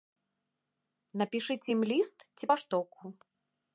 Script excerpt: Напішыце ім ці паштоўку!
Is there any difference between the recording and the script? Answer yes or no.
yes